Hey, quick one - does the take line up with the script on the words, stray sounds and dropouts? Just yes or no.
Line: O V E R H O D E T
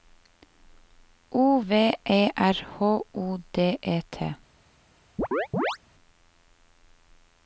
no